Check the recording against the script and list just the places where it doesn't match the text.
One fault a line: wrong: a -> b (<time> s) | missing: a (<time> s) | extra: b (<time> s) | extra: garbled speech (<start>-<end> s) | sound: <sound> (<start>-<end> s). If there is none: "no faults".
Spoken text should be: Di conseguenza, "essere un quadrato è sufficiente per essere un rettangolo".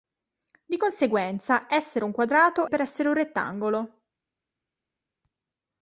missing: è sufficiente (2.6 s)